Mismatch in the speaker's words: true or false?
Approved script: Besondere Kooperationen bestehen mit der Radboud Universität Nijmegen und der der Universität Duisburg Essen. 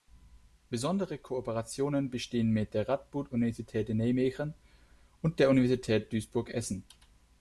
true